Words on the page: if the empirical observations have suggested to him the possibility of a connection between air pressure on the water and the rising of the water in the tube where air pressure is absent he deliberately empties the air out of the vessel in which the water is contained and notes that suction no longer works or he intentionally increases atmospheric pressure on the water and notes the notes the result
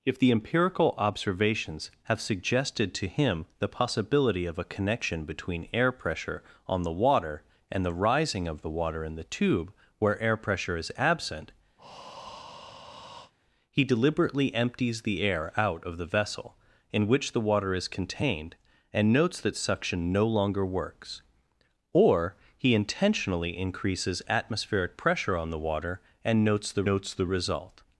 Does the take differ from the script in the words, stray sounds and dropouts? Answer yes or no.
yes